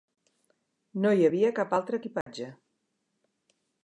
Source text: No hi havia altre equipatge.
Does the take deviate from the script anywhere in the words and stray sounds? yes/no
yes